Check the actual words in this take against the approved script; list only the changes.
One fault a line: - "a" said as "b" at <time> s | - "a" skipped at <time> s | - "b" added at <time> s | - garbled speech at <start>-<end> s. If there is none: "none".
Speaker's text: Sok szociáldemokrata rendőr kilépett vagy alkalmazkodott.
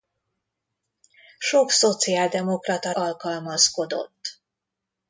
- "rendőr kilépett vagy" skipped at 2.9 s